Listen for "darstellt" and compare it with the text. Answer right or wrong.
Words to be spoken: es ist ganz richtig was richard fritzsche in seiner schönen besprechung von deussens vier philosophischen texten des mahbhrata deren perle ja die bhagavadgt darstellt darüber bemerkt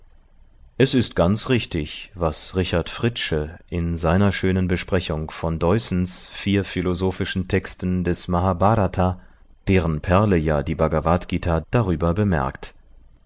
wrong